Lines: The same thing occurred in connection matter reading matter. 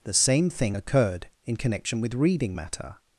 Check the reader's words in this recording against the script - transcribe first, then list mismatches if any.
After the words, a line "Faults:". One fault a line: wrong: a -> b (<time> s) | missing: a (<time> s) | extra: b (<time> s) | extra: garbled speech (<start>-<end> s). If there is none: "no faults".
The same thing occurred in connection with reading matter.
Faults:
wrong: matter -> with (2.0 s)